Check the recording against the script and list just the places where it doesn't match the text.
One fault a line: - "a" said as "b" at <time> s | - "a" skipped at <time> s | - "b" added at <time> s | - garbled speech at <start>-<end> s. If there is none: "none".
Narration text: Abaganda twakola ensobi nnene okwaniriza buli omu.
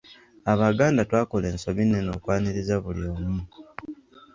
none